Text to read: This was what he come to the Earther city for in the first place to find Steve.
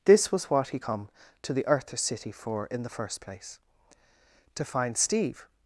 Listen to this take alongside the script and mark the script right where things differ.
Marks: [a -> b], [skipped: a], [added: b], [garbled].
This was what he come to the Earther city for in the first place to find Steve.